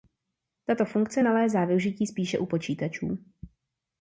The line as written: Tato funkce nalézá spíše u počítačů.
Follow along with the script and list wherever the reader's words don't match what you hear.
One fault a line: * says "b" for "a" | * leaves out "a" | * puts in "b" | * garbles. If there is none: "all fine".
* puts in "využití"